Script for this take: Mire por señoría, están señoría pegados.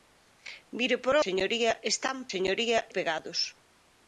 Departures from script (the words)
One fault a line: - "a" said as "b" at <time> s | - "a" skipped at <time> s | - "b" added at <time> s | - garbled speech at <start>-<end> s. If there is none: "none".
none